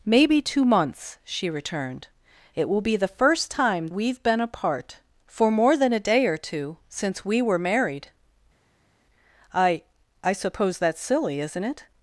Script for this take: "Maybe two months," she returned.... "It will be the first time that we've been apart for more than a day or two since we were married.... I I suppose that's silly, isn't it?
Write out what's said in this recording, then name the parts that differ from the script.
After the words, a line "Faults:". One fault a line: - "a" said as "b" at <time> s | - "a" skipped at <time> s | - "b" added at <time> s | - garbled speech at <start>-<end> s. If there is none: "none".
"Maybe two months," she returned.... "It will be the first time we've been apart for more than a day or two since we were married.... I I suppose that's silly, isn't it?
Faults:
- "that" skipped at 3.9 s